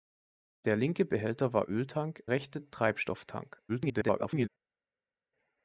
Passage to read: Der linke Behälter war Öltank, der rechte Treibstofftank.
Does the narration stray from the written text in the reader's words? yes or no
yes